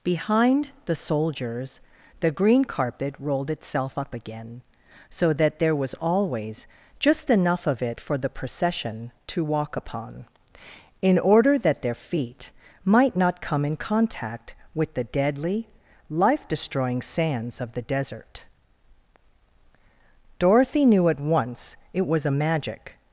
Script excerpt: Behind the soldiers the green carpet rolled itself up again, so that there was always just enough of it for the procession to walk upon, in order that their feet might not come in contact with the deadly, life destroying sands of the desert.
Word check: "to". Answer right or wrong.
right